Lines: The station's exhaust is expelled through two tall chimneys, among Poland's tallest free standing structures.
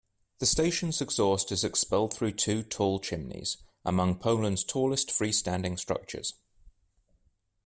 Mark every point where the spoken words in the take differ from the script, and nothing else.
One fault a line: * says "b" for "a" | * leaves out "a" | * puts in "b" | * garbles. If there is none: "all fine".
all fine